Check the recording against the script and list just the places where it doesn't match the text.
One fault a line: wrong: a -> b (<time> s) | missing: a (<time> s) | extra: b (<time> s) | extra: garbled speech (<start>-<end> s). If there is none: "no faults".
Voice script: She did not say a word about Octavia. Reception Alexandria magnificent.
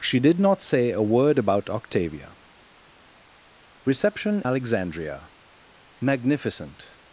no faults